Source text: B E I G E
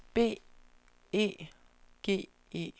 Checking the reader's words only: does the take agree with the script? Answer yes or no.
no